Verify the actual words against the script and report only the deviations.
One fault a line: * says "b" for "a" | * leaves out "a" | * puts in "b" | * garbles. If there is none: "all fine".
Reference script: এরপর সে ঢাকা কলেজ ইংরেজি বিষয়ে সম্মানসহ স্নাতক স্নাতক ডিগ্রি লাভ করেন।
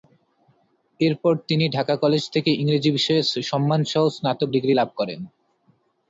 * says "তিনি" for "সে"
* puts in "থেকে"
* leaves out "স্নাতক"